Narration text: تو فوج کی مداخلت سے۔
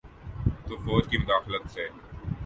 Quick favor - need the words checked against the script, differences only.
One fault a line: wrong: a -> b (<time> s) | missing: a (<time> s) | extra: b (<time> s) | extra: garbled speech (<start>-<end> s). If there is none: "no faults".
no faults